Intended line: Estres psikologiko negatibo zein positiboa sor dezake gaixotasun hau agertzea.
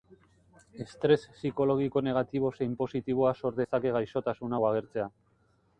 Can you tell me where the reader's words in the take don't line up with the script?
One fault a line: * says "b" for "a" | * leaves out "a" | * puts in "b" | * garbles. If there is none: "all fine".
all fine